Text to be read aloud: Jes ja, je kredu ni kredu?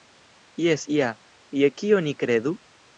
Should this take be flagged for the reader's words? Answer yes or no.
yes